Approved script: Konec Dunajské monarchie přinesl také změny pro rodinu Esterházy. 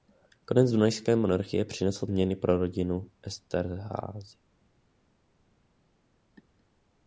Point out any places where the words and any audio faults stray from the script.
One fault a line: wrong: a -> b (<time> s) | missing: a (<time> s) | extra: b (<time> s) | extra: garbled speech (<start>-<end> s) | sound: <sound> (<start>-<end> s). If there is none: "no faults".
missing: také (2.1 s)